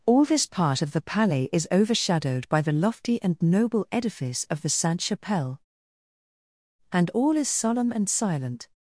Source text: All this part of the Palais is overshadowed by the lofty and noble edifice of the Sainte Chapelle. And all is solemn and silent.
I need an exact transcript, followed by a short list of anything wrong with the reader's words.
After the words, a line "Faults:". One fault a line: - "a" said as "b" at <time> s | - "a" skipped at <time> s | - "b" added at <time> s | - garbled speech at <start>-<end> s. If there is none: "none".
All this part of the Palais is overshadowed by the lofty and noble edifice of the Sainte Chapelle. And all is solemn and silent.
Faults:
none